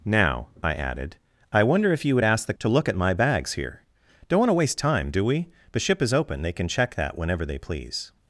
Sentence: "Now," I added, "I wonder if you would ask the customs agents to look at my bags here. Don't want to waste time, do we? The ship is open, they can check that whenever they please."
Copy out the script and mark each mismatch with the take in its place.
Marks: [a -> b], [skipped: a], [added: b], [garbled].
"Now," I added, "I wonder if you would ask the [skipped: customs agents] to look at my bags here. Don't want to waste time, do we? The ship is open, they can check that whenever they please."